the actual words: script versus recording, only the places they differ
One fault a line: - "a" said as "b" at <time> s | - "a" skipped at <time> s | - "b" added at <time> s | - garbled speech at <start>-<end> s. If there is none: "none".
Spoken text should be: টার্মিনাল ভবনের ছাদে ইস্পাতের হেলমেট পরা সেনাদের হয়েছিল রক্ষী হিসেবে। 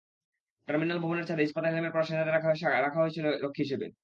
- "রাখা" added at 2.3 s